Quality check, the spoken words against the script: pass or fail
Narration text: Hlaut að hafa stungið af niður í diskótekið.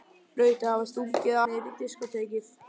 fail